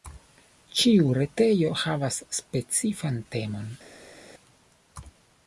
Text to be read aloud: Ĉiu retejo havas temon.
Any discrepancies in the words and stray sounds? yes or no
yes